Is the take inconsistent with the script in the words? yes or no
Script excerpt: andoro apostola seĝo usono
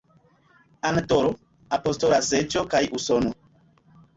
yes